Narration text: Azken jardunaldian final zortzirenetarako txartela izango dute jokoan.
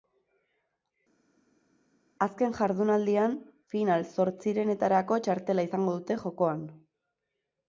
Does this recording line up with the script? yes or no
yes